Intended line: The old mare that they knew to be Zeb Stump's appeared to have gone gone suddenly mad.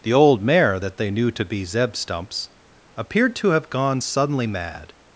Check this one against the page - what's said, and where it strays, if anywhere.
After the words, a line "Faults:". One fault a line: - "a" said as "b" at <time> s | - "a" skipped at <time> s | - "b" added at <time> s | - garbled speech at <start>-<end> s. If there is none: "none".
The old mare that they knew to be Zeb Stump's appeared to have gone suddenly mad.
Faults:
- "gone" skipped at 4.0 s